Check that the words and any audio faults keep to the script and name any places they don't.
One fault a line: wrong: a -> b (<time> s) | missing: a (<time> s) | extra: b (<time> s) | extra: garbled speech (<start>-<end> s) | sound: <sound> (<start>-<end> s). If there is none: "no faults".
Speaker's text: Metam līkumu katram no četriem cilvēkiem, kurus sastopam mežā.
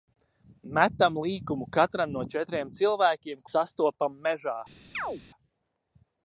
missing: kurus (3.5 s)
sound: chirp (4.9-5.2 s)